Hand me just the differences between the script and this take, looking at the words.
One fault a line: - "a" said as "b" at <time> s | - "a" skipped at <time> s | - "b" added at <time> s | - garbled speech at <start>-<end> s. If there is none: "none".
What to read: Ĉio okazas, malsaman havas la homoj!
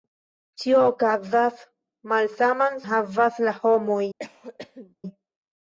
none